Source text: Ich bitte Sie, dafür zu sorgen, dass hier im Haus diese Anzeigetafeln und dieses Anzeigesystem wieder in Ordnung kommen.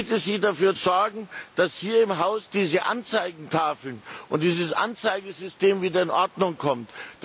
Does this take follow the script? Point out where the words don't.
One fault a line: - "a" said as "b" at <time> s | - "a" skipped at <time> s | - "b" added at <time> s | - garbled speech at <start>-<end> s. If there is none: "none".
- "zu" skipped at 0.8 s